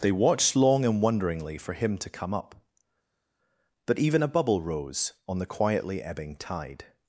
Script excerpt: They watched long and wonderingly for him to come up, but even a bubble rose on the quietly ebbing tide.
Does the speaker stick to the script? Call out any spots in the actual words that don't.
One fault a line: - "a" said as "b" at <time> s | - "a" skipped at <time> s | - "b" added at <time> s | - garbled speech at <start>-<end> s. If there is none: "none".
none